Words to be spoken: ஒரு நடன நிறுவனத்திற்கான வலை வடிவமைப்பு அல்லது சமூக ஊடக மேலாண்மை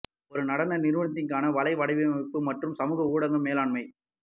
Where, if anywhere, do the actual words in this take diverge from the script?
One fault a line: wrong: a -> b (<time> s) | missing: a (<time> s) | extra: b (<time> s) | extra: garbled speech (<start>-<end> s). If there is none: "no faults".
wrong: அல்லது -> மற்றும் (2.5 s)